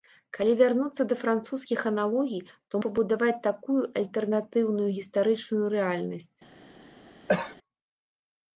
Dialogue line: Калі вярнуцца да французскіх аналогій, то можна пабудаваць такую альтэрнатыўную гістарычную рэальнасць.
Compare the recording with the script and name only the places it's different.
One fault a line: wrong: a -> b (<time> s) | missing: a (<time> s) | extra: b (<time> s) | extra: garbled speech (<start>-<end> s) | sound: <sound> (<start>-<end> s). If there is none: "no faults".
missing: можна (2.8 s)
sound: cough (7.3-7.6 s)